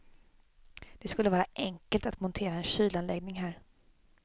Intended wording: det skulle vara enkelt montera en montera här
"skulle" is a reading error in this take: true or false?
false